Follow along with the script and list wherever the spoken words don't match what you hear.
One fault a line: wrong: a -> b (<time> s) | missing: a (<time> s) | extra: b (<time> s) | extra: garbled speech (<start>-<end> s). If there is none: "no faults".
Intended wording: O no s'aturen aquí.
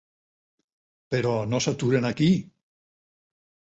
wrong: O -> Però (1.1 s)